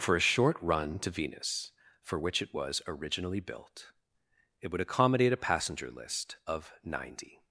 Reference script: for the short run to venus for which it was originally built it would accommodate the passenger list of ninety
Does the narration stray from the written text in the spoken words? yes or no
yes